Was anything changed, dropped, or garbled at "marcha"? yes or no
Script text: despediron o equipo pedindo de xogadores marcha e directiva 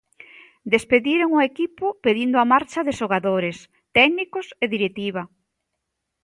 yes